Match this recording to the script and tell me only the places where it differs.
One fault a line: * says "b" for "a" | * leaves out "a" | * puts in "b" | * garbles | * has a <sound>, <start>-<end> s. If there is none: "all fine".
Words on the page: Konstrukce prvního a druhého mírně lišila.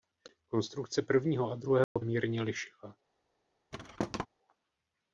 * has a dropout, 1.8-2.0 s
* has a thud, 3.7-4.3 s